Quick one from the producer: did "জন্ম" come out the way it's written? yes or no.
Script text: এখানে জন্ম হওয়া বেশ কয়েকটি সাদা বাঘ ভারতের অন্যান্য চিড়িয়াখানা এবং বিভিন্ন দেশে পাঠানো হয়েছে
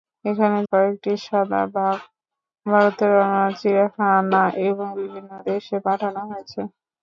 no